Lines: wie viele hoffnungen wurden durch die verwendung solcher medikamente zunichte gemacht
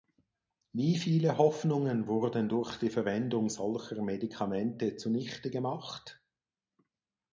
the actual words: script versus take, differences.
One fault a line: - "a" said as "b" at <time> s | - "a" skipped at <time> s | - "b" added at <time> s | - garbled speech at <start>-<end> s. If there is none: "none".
none